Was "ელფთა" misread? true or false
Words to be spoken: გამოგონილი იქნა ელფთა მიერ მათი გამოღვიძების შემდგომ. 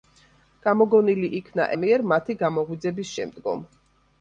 true